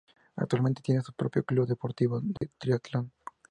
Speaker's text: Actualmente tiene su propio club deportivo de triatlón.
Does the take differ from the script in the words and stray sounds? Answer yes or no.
yes